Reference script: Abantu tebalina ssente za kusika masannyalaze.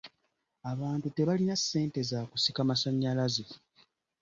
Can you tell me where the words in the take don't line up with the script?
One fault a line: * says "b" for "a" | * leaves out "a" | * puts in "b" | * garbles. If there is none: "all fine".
all fine